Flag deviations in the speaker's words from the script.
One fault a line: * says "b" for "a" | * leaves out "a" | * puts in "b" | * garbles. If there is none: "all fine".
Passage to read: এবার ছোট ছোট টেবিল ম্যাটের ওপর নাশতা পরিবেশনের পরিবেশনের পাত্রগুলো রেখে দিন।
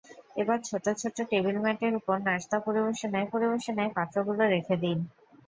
all fine